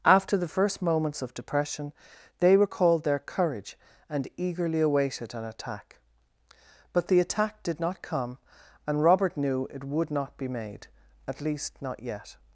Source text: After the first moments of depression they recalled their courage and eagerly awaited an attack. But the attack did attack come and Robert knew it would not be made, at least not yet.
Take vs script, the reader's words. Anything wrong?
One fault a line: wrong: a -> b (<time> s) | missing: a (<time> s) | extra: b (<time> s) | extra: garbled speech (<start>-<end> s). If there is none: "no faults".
wrong: attack -> not (7.8 s)